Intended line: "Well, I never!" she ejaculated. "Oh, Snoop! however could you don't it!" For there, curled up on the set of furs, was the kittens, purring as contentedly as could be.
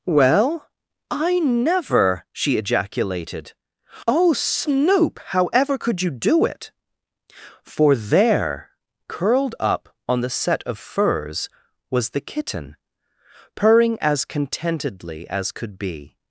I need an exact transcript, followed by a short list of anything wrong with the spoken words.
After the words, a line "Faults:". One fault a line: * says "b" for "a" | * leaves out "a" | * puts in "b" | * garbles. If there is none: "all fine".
"Well, I never!" she ejaculated. "Oh, Snoop! however could you do it!" For there, curled up on the set of furs, was the kitten, purring as contentedly as could be.
Faults:
* says "do" for "don't"
* says "kitten" for "kittens"